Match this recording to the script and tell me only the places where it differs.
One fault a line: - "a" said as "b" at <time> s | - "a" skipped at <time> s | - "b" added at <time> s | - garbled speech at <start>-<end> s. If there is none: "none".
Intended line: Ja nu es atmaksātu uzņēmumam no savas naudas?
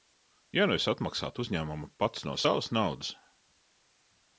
- "pats" added at 2.0 s